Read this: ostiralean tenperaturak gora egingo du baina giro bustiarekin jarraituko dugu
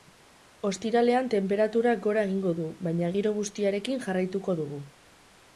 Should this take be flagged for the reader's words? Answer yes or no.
no